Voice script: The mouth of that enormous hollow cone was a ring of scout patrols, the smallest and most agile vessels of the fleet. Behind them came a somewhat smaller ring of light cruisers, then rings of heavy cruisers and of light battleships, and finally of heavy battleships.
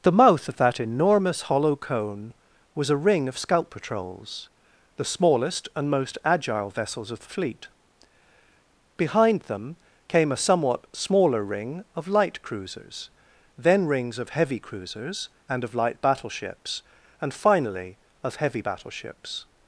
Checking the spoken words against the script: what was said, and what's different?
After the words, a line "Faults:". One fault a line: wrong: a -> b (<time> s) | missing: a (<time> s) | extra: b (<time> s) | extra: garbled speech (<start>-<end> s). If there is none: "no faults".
The mouth of that enormous hollow cone was a ring of scout patrols, the smallest and most agile vessels of the fleet. Behind them came a somewhat smaller ring of light cruisers, then rings of heavy cruisers and of light battleships, and finally of heavy battleships.
Faults:
no faults